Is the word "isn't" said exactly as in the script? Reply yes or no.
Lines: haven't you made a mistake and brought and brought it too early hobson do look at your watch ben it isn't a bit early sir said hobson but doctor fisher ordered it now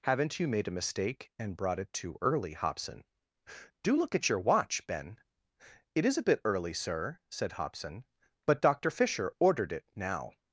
no